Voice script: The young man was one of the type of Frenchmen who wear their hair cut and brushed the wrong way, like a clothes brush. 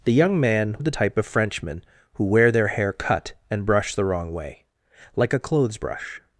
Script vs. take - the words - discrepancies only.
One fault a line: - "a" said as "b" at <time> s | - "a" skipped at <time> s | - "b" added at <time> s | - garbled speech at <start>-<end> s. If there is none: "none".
- "was one" skipped at 0.8 s